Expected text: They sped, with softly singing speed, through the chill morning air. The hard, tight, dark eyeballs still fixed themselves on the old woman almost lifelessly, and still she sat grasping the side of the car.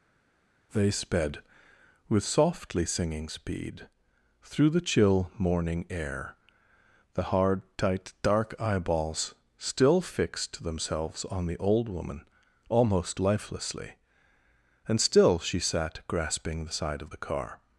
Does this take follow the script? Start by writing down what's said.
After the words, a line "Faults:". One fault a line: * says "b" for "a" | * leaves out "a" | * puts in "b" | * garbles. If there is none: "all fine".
They sped, with softly singing speed, through the chill morning air. The hard, tight, dark eyeballs still fixed themselves on the old woman almost lifelessly, and still she sat grasping the side of the car.
Faults:
all fine